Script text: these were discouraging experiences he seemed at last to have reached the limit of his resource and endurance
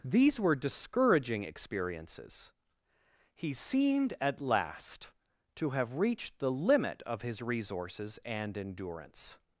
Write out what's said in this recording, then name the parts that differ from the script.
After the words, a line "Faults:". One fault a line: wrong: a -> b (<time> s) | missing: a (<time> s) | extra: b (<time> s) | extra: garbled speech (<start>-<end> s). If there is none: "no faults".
these were discouraging experiences he seemed at last to have reached the limit of his resources and endurance
Faults:
wrong: resource -> resources (7.4 s)